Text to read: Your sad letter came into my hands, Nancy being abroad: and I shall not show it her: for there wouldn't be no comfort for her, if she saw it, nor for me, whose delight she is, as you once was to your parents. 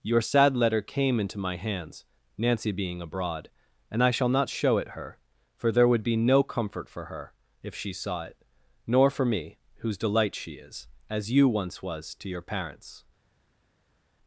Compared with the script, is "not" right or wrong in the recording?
right